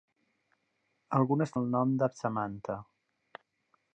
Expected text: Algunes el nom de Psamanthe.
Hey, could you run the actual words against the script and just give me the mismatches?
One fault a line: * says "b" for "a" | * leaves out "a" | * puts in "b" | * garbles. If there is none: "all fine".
all fine